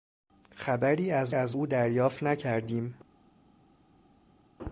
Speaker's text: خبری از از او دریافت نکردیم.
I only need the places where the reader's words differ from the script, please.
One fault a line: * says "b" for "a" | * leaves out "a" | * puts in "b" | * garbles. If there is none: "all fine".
all fine